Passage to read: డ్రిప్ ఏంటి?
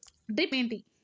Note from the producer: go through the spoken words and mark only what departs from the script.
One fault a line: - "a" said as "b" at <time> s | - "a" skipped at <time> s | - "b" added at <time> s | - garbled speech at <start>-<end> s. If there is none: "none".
none